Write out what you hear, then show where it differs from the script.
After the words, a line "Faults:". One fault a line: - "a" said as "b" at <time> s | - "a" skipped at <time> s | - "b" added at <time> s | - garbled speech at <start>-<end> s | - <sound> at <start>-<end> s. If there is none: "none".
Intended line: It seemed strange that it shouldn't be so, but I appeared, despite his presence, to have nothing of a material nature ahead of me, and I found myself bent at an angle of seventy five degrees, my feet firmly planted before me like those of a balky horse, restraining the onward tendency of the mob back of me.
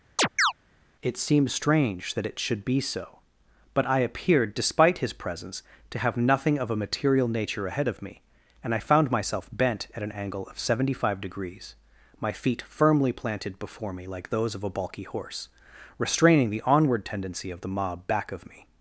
It seemed strange that it should be so, but I appeared, despite his presence, to have nothing of a material nature ahead of me, and I found myself bent at an angle of seventy five degrees, my feet firmly planted before me like those of a balky horse, restraining the onward tendency of the mob back of me.
Faults:
- chirp at 0.2-0.5 s
- "shouldn't" said as "should" at 2.4 s